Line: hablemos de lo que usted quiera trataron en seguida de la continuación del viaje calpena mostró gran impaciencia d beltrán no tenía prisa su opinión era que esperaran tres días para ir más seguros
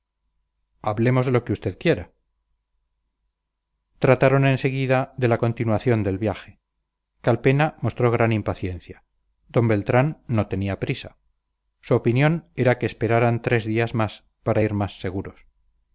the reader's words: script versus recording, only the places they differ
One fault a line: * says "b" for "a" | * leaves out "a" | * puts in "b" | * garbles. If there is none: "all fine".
* puts in "más"